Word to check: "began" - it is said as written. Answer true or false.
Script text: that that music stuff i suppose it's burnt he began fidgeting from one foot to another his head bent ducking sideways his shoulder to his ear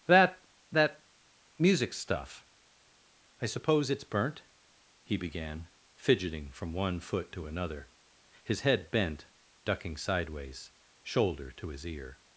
true